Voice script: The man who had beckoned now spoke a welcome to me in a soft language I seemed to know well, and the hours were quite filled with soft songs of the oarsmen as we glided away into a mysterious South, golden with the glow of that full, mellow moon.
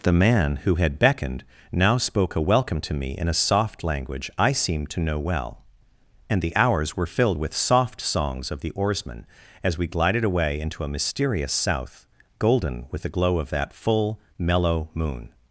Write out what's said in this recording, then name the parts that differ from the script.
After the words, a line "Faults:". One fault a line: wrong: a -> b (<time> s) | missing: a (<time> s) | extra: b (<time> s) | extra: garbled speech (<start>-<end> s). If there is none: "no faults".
The man who had beckoned now spoke a welcome to me in a soft language I seemed to know well, and the hours were filled with soft songs of the oarsmen as we glided away into a mysterious South, golden with the glow of that full, mellow moon.
Faults:
missing: quite (7.0 s)